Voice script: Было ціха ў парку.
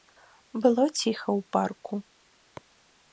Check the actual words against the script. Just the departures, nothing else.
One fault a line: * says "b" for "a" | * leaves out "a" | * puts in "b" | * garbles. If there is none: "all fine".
all fine